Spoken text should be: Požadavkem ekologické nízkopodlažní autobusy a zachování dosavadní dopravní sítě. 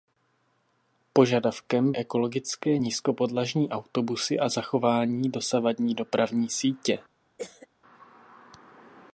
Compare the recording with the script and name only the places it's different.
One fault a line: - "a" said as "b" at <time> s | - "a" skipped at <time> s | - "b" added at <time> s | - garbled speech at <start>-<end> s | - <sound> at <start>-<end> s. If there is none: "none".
- cough at 7.4-7.7 s